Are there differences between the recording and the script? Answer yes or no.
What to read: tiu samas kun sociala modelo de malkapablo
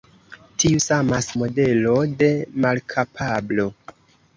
yes